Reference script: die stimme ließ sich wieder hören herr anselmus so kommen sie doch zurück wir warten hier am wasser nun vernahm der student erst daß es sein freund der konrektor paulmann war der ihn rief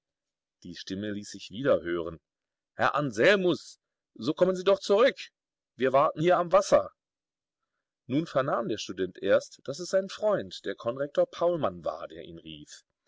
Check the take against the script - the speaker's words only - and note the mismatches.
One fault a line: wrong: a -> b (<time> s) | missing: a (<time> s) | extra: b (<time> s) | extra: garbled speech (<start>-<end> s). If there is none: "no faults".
no faults